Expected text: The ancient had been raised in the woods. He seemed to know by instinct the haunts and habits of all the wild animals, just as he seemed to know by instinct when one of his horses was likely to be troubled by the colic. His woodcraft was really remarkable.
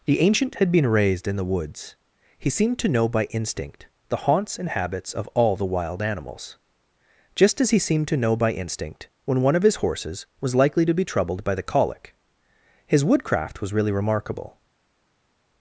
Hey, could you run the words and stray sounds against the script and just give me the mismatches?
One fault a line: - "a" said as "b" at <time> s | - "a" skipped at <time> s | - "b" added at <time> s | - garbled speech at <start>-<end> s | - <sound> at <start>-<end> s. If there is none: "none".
none